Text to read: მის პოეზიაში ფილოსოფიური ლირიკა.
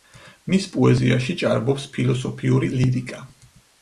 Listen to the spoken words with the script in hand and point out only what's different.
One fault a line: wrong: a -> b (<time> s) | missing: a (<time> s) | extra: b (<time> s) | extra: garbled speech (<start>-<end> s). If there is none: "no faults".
extra: ჭარბობს (1.4 s)